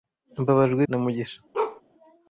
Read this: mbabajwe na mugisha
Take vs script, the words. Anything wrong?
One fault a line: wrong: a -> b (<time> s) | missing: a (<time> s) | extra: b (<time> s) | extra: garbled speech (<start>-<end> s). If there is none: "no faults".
no faults